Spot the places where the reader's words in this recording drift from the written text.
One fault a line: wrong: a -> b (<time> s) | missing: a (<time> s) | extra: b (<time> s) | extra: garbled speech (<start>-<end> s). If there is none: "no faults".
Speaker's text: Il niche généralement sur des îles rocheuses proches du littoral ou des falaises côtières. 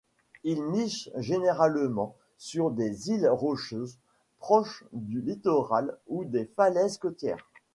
no faults